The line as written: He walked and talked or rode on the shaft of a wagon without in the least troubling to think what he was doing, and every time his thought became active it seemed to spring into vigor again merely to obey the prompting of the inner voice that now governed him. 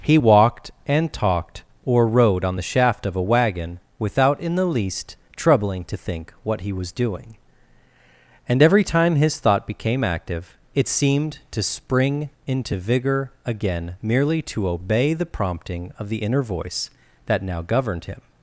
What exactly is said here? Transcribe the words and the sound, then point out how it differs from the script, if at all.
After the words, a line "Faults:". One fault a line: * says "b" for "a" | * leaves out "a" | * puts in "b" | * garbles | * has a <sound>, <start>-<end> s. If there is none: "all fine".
He walked and talked or rode on the shaft of a wagon without in the least troubling to think what he was doing, and every time his thought became active it seemed to spring into vigor again merely to obey the prompting of the inner voice that now governed him.
Faults:
all fine